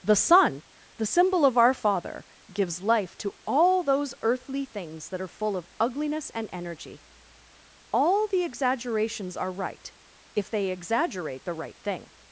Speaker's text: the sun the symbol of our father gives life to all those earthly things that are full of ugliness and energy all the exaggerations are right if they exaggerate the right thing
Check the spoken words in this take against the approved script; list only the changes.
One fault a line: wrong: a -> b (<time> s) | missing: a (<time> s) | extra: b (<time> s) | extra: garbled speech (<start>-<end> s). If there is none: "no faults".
no faults